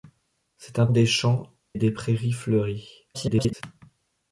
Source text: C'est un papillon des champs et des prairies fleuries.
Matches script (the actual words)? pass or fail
fail